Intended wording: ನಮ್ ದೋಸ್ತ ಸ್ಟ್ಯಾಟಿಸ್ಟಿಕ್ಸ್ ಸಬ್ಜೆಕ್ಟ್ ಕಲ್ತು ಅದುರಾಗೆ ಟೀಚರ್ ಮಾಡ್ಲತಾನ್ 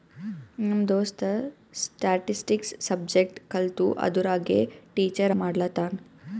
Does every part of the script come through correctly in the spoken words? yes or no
yes